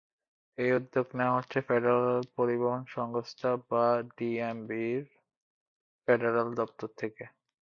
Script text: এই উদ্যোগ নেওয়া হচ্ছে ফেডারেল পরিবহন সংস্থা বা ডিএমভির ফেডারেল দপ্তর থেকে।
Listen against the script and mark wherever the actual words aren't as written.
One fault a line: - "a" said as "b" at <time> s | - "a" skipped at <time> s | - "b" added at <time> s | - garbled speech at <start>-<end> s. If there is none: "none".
none